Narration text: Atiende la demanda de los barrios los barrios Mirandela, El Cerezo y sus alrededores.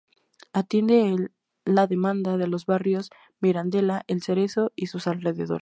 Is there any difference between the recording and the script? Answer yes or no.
yes